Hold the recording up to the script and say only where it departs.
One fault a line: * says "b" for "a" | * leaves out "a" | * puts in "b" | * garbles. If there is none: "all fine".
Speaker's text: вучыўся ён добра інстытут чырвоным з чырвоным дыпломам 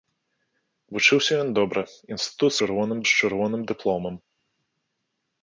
all fine